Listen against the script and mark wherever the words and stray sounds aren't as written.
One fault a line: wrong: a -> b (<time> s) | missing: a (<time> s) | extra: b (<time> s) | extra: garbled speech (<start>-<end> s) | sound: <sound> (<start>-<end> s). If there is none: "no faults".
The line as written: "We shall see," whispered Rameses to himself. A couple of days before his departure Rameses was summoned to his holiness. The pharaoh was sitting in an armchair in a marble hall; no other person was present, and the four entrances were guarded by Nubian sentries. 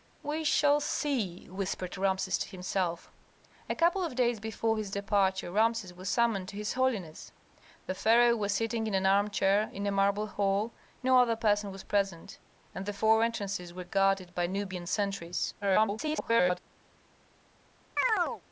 extra: garbled speech (15.6-16.6 s)
sound: chirp (18.0-18.4 s)